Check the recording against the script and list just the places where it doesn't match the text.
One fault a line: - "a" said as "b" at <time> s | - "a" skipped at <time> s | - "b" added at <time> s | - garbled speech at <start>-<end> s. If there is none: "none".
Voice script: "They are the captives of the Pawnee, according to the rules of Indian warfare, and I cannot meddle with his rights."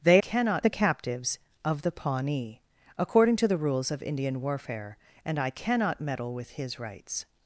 - "are" said as "cannot" at 0.2 s